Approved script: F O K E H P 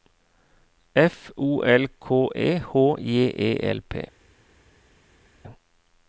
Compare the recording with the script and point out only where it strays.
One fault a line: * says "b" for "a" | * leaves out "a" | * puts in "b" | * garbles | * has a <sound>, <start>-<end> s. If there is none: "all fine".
* puts in "L"
* puts in "J E L"